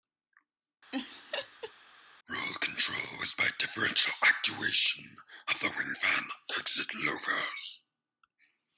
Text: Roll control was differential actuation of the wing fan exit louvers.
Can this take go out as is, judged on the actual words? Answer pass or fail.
fail